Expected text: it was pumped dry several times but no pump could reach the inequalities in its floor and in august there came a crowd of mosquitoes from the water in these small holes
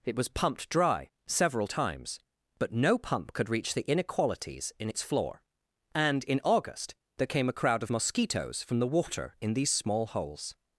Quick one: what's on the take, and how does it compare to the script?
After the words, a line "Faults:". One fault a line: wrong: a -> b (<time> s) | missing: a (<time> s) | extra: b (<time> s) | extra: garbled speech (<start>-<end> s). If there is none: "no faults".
it was pumped dry several times but no pump could reach the inequalities in its floor and in august there came a crowd of mosquitoes from the water in these small holes
Faults:
no faults